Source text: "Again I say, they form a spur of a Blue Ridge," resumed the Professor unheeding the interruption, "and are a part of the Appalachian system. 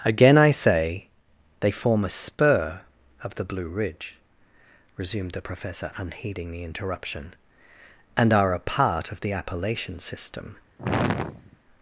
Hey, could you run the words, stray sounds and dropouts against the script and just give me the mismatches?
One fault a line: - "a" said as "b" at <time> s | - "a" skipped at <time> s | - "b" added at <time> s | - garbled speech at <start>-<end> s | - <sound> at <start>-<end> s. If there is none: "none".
- "a" said as "the" at 3.4 s
- sigh at 10.8-11.6 s